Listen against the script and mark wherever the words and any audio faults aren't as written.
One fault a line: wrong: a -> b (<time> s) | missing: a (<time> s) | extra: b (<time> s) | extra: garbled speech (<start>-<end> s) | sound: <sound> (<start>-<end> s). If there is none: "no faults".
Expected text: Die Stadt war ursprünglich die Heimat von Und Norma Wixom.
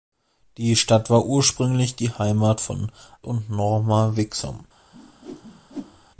sound: whoosh (4.9-6.1 s)